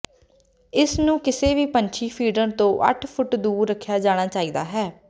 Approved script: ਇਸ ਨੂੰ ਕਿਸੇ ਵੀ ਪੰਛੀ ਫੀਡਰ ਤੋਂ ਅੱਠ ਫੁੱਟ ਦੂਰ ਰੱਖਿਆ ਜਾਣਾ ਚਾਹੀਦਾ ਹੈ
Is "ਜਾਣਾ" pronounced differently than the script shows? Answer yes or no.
no